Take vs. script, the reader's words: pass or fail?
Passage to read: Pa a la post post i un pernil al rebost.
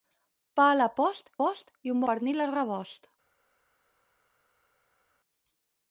pass